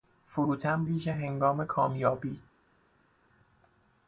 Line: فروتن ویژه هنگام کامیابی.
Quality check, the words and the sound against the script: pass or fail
pass